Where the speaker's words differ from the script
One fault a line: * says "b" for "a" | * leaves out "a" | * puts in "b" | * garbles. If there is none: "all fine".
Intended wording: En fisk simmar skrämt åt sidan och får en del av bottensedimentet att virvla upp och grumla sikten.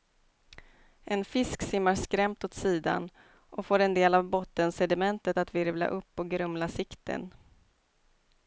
all fine